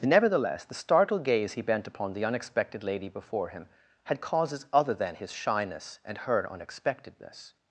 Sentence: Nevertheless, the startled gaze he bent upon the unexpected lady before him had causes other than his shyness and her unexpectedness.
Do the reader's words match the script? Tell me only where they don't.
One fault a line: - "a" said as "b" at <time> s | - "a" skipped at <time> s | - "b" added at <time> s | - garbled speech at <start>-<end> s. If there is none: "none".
none